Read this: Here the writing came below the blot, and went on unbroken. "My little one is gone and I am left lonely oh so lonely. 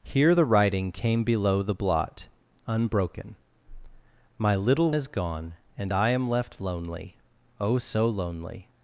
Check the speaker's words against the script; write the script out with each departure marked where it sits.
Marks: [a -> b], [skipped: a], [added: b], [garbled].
Here the writing came below the blot, [skipped: and went on] unbroken. "My little [skipped: one] is gone and I am left lonely oh so lonely.